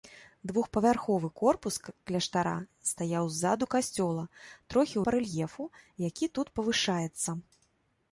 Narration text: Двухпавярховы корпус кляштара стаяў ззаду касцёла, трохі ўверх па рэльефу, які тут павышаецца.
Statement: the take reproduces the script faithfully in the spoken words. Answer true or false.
false